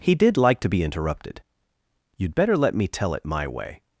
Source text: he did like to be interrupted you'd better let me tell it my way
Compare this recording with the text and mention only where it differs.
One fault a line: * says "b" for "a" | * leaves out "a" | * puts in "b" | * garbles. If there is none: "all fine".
all fine